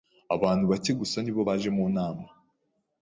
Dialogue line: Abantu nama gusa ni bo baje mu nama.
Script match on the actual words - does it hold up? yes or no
no